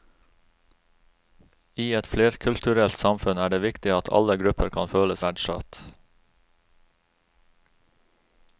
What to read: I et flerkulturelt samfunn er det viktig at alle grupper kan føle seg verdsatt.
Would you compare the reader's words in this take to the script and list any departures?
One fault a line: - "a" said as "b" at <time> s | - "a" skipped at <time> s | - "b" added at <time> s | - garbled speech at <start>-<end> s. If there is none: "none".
- "seg" skipped at 5.2 s